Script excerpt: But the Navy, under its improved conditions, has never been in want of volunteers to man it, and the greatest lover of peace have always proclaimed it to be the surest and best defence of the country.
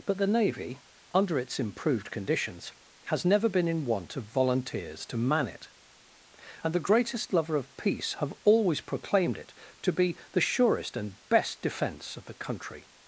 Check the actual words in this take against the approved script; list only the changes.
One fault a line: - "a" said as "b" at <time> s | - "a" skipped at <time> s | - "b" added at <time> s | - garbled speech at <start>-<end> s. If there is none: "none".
none